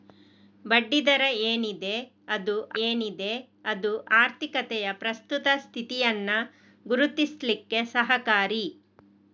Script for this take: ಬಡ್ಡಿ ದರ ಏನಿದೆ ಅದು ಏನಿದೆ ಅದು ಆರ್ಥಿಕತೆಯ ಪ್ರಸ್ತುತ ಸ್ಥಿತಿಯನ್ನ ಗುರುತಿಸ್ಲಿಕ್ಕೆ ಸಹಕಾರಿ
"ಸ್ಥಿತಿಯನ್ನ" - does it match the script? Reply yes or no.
yes